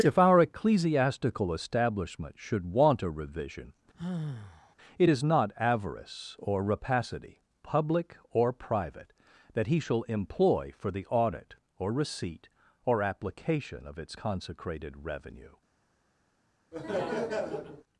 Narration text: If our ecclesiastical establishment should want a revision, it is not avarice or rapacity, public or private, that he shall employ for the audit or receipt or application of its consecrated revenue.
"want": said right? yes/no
yes